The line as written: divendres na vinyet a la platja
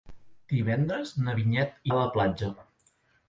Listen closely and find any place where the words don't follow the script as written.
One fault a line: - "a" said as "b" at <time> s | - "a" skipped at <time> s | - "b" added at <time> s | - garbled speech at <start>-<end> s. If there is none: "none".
none